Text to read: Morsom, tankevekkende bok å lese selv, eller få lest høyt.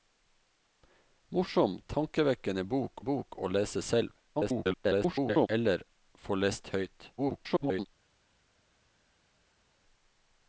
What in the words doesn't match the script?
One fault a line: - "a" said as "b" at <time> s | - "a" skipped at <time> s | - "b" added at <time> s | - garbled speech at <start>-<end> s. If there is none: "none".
- "bok" added at 3.0 s
- garbled speech at 4.3-5.5 s
- garbled speech at 7.2-7.9 s